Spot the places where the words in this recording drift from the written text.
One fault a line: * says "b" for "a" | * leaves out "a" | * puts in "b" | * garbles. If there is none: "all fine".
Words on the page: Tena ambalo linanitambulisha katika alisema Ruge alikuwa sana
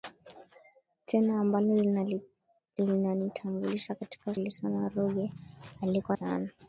all fine